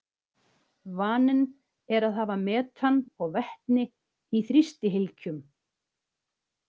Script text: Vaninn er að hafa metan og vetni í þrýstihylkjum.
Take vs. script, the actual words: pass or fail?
pass